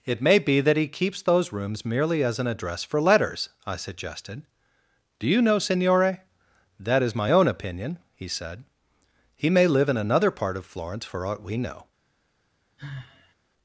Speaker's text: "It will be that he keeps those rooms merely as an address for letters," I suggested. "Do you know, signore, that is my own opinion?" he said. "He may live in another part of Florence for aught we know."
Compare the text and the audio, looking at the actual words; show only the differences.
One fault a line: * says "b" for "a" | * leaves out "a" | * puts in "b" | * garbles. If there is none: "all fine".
* says "may" for "will"